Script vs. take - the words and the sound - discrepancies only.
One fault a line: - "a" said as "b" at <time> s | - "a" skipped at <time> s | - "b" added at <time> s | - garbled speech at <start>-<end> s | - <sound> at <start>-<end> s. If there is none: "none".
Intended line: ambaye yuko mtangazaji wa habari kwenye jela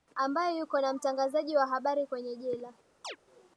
- "na" added at 0.8 s
- chirp at 3.0-3.2 s